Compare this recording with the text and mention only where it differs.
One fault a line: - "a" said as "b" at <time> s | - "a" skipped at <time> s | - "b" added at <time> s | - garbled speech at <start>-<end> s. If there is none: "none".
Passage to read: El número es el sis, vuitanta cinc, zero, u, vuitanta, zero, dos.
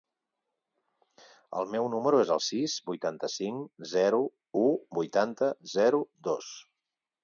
- "meu" added at 1.8 s